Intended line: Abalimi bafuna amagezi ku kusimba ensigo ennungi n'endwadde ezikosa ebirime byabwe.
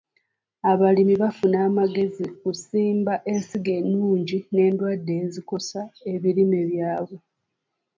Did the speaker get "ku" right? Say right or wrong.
wrong